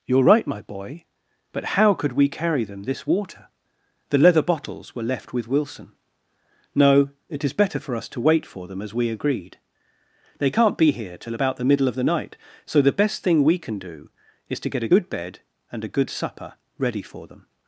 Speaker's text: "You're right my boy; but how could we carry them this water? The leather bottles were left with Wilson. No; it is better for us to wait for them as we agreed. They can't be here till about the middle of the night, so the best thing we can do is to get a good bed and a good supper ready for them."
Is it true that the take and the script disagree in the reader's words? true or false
false